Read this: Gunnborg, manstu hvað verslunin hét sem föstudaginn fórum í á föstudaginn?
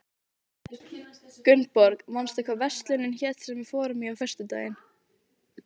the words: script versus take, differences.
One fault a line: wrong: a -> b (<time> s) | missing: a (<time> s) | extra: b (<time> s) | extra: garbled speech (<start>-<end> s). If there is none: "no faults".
wrong: föstudaginn -> við (3.6 s)